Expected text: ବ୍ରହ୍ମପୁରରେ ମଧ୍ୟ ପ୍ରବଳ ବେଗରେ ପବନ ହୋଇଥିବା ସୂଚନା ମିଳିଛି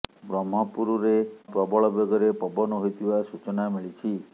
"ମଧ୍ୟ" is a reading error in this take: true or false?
true